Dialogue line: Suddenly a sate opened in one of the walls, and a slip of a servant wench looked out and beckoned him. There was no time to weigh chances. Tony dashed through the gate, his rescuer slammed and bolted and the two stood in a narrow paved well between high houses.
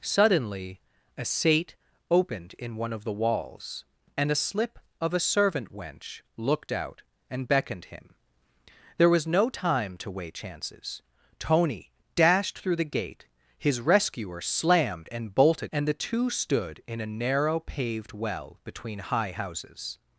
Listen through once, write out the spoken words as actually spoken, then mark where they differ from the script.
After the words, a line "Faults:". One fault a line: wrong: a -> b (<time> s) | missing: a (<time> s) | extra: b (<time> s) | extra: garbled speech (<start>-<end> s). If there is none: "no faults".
Suddenly a sate opened in one of the walls, and a slip of a servant wench looked out and beckoned him. There was no time to weigh chances. Tony dashed through the gate, his rescuer slammed and bolted and the two stood in a narrow paved well between high houses.
Faults:
no faults